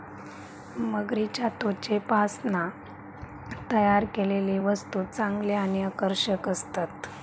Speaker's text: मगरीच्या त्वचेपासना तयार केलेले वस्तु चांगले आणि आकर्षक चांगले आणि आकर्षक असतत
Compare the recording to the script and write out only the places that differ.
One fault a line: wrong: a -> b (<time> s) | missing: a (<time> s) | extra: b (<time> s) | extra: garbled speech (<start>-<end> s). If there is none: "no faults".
missing: चांगले आणि आकर्षक (6.5 s)